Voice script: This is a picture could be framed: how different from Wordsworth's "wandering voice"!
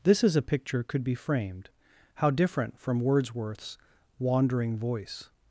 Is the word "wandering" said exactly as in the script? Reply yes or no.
yes